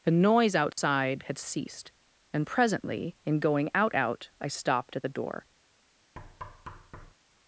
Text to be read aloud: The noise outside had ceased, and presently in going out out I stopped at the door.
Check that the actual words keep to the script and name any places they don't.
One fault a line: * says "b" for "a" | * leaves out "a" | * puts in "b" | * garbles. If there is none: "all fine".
all fine